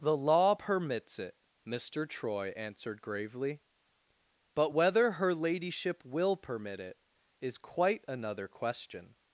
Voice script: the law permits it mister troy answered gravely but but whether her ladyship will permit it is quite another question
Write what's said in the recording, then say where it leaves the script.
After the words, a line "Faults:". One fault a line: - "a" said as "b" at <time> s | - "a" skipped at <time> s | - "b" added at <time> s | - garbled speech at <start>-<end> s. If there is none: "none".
the law permits it mister troy answered gravely but whether her ladyship will permit it is quite another question
Faults:
- "but" skipped at 4.7 s